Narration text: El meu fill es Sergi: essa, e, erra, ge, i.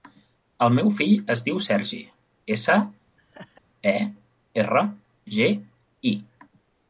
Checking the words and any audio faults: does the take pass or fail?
fail